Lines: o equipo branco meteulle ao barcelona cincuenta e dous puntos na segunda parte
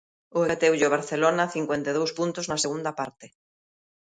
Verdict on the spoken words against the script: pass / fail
fail